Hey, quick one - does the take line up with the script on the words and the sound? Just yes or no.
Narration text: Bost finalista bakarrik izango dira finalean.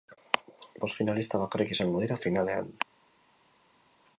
yes